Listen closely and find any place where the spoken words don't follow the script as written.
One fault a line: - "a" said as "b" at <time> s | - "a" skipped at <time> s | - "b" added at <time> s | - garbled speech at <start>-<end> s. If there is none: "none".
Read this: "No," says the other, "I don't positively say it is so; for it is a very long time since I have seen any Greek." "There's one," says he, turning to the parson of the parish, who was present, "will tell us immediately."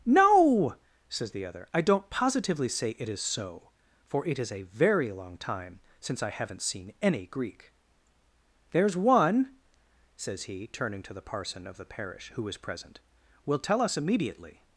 - "have" said as "haven't" at 6.3 s